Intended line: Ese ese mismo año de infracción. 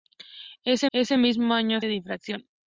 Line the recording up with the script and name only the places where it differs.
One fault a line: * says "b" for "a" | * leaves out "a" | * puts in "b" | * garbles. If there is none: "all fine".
all fine